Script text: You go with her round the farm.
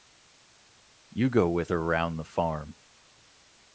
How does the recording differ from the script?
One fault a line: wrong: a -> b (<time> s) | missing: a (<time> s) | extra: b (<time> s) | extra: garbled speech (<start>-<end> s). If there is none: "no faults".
no faults